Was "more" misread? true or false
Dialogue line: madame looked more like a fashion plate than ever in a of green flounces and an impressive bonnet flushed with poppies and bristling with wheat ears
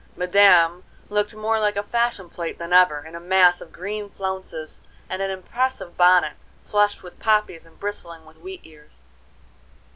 false